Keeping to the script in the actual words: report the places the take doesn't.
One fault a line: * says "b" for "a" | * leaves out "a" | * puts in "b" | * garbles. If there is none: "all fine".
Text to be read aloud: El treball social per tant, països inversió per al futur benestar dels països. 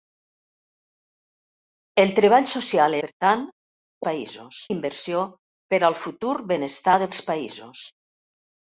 all fine